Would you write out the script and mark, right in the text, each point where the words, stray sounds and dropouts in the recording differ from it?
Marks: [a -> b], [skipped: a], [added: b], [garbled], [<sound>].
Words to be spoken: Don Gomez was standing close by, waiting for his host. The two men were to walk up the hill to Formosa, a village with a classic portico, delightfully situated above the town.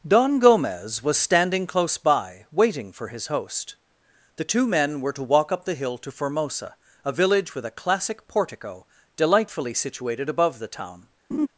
Don Gomez was standing close by, waiting for his host. The two men were to walk up the hill to Formosa, a village with a classic portico, delightfully situated above the town. [laugh]